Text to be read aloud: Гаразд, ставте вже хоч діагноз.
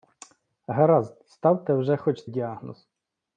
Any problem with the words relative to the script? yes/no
no